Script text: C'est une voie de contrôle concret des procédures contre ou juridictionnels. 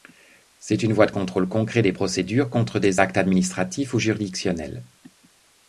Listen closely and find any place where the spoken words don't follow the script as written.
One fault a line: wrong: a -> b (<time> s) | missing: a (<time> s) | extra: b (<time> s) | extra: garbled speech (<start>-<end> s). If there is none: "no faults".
extra: des actes administratifs (2.8 s)